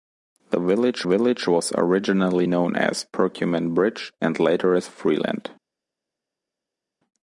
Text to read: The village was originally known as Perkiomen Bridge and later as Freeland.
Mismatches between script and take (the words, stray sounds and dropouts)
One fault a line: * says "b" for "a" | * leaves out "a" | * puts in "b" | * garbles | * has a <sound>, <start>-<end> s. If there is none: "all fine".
* puts in "village"